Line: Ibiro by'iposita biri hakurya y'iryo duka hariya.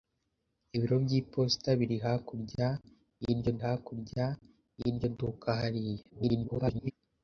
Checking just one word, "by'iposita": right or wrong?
right